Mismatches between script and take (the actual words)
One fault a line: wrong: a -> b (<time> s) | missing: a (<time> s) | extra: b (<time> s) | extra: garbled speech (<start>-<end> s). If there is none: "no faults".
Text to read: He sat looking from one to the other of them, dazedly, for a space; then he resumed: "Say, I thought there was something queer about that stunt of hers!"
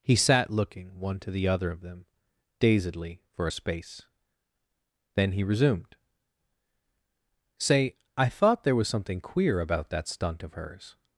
missing: from (1.0 s)